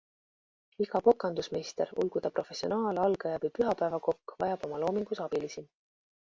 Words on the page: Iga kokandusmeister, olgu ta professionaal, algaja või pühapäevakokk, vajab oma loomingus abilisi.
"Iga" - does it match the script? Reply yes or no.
yes